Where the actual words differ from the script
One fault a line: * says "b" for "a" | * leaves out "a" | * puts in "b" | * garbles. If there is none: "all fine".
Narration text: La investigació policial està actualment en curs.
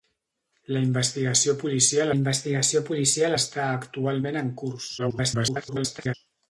* puts in "investigació policial"
* garbles